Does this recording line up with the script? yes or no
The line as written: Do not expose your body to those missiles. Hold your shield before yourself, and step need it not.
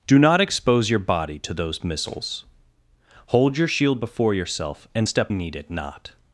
yes